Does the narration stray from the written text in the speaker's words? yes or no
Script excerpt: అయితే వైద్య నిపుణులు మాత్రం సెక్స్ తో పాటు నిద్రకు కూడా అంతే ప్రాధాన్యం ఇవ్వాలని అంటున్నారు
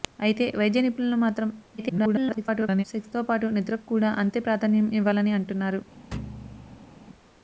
yes